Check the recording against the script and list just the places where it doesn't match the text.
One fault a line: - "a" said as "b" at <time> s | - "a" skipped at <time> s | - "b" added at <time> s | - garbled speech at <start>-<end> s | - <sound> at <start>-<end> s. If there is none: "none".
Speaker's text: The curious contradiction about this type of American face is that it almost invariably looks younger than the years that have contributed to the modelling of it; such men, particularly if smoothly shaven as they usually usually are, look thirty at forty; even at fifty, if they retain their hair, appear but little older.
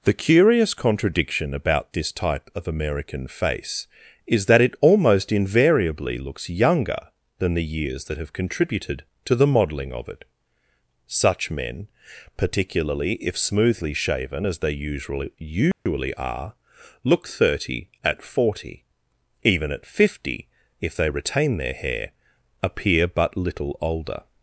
- dropout at 15.7-15.9 s